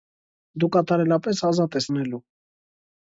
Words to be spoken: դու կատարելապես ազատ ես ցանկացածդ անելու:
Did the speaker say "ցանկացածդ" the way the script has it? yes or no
no